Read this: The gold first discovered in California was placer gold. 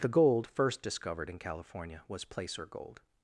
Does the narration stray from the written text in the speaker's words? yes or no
no